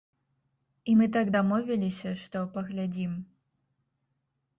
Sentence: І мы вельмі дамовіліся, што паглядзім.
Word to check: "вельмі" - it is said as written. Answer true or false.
false